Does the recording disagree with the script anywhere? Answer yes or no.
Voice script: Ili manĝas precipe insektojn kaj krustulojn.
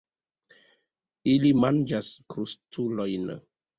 yes